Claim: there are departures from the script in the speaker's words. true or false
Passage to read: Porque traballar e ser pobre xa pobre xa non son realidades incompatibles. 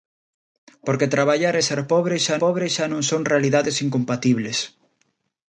false